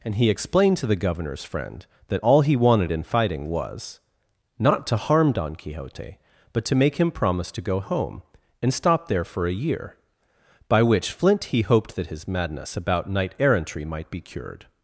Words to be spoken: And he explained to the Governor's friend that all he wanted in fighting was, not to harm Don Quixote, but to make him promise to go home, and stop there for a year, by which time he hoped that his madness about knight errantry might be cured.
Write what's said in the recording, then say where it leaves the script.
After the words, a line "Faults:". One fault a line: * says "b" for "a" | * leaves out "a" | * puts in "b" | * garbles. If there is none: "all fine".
And he explained to the Governor's friend that all he wanted in fighting was, not to harm Don Quixote, but to make him promise to go home, and stop there for a year, by which flint he hoped that his madness about knight errantry might be cured.
Faults:
* says "flint" for "time"